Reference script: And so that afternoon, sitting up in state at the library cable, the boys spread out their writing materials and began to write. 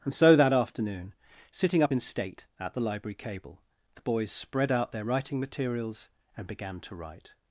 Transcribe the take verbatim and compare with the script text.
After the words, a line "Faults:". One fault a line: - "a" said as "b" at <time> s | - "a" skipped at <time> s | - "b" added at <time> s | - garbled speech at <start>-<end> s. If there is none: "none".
And so that afternoon, sitting up in state at the library cable, the boys spread out their writing materials and began to write.
Faults:
none